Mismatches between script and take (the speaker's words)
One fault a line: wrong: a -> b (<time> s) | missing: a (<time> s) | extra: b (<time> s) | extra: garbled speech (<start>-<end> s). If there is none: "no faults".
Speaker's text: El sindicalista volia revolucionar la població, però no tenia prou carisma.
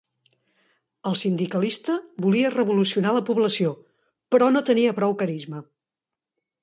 no faults